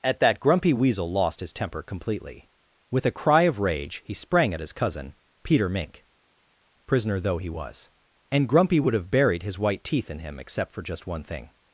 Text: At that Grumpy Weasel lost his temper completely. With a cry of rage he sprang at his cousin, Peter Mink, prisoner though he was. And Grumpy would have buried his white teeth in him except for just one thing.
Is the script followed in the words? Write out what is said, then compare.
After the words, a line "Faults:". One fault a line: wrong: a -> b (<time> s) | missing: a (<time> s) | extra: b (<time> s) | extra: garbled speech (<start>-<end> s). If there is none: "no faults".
At that Grumpy Weasel lost his temper completely. With a cry of rage he sprang at his cousin, Peter Mink, prisoner though he was. And Grumpy would have buried his white teeth in him except for just one thing.
Faults:
no faults